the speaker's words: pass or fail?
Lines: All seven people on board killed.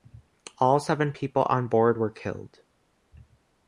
fail